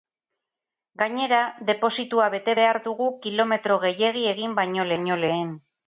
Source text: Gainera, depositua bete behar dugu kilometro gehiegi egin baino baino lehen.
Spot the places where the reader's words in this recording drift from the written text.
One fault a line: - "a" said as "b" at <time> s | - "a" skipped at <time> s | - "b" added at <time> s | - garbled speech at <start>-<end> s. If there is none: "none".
none